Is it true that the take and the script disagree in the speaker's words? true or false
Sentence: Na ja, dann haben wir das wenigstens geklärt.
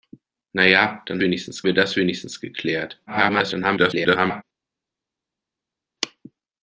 true